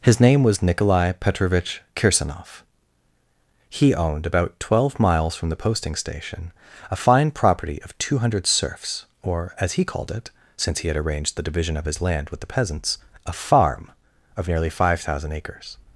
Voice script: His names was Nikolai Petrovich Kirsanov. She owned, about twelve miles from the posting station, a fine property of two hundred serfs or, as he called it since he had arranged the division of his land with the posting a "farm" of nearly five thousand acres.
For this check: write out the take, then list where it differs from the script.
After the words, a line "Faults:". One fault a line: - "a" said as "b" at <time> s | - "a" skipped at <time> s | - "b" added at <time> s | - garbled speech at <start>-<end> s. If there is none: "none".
His name was Nikolai Petrovich Kirsanov. He owned, about twelve miles from the posting station, a fine property of two hundred serfs or, as he called it since he had arranged the division of his land with the peasants a "farm" of nearly five thousand acres.
Faults:
- "names" said as "name" at 0.2 s
- "She" said as "He" at 3.7 s
- "posting" said as "peasants" at 12.5 s